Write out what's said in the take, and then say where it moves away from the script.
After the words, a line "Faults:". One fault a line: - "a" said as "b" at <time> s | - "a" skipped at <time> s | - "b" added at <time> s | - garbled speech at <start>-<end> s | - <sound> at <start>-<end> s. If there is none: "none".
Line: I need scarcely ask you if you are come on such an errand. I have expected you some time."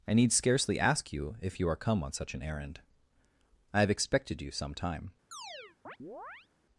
I need scarcely ask you if you are come on such an errand. I have expected you some time."
Faults:
- chirp at 5.3-6.5 s